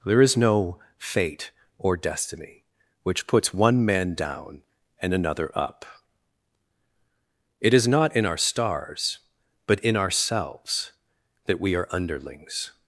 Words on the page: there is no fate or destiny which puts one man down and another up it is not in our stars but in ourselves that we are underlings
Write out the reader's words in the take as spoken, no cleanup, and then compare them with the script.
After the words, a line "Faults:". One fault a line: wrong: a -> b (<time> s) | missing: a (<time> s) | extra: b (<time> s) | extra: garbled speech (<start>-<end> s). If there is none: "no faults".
there is no fate or destiny which puts one man down and another up it is not in our stars but in ourselves that we are underlings
Faults:
no faults